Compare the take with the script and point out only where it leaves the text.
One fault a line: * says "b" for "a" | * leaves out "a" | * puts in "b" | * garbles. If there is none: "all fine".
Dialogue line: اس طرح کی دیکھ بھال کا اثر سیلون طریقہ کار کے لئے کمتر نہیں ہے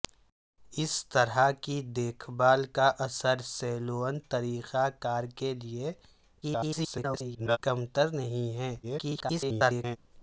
* garbles
* garbles